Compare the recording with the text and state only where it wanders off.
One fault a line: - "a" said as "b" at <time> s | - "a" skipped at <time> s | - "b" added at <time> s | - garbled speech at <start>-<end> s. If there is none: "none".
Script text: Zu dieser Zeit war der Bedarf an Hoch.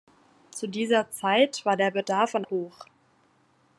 none